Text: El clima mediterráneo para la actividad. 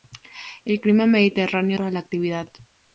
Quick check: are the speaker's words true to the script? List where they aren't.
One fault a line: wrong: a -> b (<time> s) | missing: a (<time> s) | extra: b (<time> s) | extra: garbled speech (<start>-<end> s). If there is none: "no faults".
no faults